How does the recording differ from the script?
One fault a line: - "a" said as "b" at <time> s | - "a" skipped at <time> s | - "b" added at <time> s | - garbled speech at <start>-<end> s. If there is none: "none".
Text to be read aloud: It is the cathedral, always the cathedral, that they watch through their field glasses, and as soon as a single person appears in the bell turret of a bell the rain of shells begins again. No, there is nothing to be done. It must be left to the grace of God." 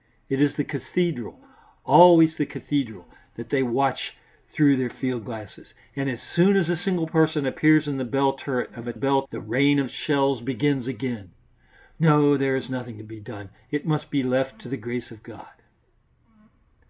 none